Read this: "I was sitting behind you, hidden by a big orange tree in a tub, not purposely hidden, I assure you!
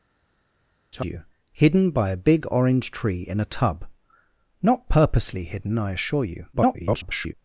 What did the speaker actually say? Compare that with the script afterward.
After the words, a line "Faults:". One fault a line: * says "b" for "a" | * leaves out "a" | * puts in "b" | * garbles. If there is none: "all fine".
"I you, hidden by a big orange tree in a tub, not purposely hidden, I assure you! [garbled]
Faults:
* leaves out "was sitting behind"
* garbles